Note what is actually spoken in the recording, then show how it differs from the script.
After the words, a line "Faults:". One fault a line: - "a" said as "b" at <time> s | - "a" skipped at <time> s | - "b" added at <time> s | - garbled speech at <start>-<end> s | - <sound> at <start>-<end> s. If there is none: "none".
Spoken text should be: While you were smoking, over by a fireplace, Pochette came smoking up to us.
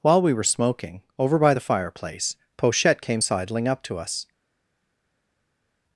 While we were smoking, over by the fireplace, Pochette came sidling up to us.
Faults:
- "you" said as "we" at 0.2 s
- "a" said as "the" at 1.5 s
- "smoking" said as "sidling" at 3.2 s